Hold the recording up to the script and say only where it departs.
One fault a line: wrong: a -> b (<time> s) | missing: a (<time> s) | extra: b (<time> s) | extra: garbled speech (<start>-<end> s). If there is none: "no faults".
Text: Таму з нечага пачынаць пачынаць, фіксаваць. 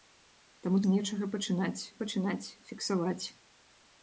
no faults